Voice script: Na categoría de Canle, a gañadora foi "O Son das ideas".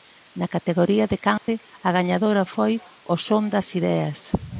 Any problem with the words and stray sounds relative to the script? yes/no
yes